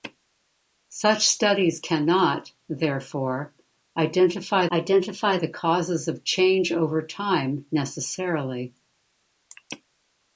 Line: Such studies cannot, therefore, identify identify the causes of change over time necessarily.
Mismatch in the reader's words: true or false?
false